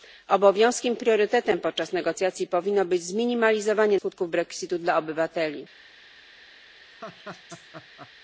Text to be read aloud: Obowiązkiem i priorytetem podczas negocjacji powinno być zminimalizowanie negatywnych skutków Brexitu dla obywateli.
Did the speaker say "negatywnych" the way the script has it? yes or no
no